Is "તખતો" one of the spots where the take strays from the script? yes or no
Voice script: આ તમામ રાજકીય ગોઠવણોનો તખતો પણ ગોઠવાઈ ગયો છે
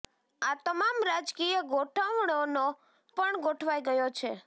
yes